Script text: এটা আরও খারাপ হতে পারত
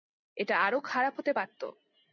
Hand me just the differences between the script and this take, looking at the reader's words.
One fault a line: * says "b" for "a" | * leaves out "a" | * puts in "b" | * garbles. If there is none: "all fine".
all fine